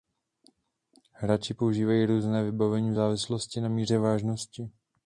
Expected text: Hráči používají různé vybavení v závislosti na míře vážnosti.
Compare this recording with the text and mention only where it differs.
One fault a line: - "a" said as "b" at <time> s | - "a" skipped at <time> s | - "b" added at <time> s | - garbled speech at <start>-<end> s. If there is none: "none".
none